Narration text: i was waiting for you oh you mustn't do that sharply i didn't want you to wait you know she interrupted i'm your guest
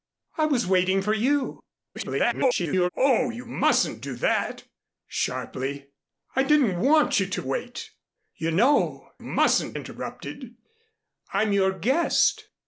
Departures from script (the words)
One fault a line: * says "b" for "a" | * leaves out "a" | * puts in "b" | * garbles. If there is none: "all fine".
* garbles
* says "mustn't" for "she"